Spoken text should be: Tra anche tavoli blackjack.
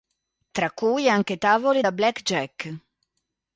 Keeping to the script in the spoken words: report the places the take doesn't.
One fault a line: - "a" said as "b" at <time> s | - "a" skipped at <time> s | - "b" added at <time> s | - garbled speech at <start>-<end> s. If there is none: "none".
- "cui" added at 0.7 s
- "da" added at 1.8 s